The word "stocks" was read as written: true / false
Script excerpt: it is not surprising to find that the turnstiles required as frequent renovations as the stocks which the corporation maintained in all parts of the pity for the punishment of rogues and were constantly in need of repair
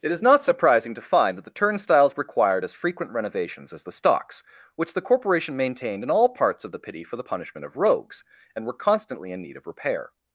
true